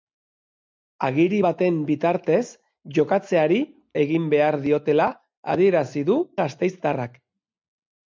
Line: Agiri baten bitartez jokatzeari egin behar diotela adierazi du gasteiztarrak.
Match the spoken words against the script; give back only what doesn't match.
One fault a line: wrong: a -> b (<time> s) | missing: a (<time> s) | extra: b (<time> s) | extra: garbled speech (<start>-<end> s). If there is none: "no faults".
no faults